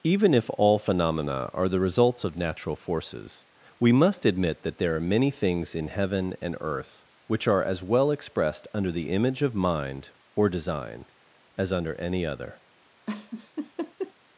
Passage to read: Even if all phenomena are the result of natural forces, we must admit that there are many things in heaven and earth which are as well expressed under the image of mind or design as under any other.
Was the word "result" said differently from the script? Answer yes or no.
yes